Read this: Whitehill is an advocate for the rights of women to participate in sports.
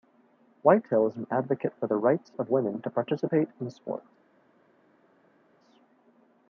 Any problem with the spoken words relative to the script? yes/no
no